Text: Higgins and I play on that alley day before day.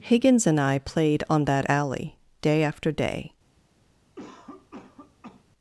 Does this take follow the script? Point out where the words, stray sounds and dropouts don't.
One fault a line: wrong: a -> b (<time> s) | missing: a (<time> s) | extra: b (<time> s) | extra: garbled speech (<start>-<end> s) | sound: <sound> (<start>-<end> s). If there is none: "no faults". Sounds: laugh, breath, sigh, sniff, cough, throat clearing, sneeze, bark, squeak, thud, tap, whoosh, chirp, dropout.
wrong: play -> played (0.8 s)
wrong: before -> after (2.6 s)
sound: cough (4.2-5.4 s)